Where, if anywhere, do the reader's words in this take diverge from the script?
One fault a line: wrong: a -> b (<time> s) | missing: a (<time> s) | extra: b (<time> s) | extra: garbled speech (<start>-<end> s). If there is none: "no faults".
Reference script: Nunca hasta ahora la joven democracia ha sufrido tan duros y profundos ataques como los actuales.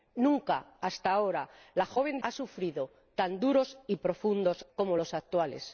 missing: democracia (2.2 s)
missing: ataques (4.7 s)